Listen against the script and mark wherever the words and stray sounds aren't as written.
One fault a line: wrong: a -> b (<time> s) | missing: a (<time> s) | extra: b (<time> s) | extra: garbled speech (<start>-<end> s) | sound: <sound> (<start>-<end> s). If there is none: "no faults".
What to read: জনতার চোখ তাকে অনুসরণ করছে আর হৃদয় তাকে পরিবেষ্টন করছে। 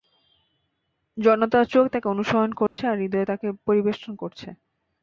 sound: dropout (2.7-2.8 s)